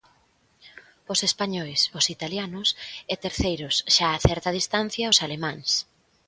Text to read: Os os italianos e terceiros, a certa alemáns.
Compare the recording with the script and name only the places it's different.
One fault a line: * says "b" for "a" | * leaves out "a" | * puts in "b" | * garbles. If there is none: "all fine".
* puts in "españois"
* puts in "xa"
* puts in "distancia os"